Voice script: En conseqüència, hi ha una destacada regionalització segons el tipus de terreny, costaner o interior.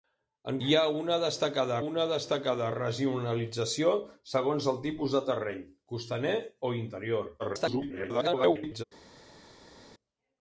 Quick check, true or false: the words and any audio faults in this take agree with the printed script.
false